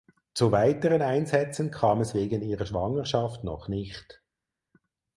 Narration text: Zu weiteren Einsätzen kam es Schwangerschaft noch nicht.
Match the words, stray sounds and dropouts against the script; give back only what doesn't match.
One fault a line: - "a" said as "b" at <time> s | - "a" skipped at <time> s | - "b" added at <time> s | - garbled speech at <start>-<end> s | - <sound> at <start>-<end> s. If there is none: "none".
- "wegen ihrer" added at 2.1 s